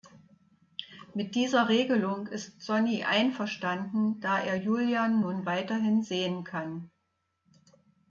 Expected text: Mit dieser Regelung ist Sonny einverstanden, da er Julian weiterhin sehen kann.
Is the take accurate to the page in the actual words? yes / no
no